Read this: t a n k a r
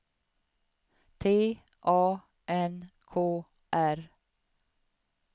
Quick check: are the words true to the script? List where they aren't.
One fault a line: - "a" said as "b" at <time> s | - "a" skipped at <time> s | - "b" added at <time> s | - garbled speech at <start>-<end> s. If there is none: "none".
- "a" skipped at 3.5 s